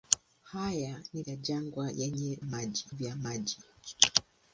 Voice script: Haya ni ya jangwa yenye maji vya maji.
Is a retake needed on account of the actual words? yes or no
no